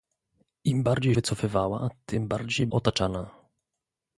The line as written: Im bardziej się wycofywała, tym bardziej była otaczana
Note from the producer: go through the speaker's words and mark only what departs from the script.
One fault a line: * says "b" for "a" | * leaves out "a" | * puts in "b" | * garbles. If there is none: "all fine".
* leaves out "się"
* leaves out "była"